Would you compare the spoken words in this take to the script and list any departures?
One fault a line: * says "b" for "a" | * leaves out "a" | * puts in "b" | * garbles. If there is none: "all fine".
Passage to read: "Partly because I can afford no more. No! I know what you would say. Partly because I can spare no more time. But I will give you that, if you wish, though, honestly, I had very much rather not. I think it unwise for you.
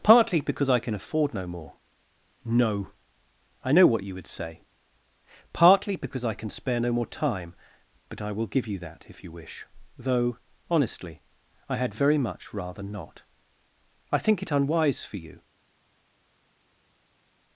all fine